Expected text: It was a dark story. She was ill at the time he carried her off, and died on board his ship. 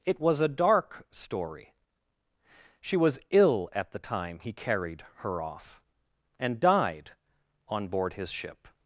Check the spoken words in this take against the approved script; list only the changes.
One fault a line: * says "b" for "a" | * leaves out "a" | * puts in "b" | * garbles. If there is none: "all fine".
all fine